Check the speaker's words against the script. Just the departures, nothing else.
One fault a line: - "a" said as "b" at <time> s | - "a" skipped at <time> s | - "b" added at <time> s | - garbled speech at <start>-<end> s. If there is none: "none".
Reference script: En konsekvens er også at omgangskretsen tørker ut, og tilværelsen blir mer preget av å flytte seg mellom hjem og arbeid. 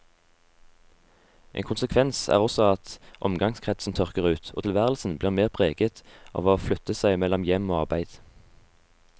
none